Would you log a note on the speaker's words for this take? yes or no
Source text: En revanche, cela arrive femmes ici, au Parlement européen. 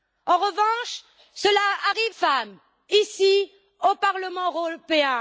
no